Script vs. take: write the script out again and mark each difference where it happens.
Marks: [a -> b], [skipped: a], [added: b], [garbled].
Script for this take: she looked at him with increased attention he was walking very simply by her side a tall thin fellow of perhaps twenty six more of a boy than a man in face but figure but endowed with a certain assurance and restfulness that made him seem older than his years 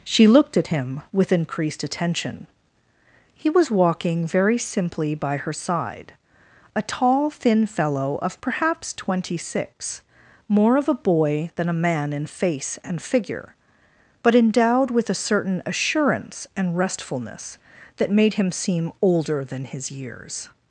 she looked at him with increased attention he was walking very simply by her side a tall thin fellow of perhaps twenty six more of a boy than a man in face [but -> and] figure but endowed with a certain assurance and restfulness that made him seem older than his years